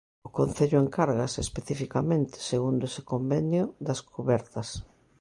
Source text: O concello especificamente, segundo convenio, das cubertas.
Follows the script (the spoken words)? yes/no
no